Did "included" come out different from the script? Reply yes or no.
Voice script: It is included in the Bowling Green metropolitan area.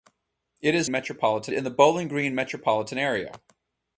yes